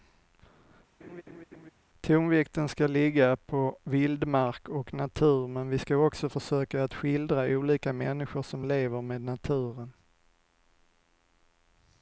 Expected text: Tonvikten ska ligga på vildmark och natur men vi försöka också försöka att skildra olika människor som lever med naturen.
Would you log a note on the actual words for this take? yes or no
yes